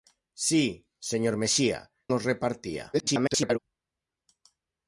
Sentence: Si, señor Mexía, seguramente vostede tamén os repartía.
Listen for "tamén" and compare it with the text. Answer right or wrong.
wrong